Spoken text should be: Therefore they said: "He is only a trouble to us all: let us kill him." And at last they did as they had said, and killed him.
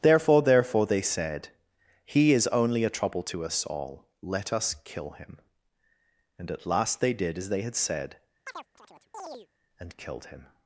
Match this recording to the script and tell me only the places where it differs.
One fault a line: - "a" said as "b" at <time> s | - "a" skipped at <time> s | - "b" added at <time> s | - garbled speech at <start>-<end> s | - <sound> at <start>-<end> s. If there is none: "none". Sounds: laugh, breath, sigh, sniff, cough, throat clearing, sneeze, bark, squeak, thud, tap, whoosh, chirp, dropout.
- "therefore" added at 0.4 s
- chirp at 8.5-9.5 s